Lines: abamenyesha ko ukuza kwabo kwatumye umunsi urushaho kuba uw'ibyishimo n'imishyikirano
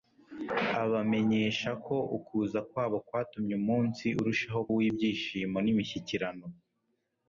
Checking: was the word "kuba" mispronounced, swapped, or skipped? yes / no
yes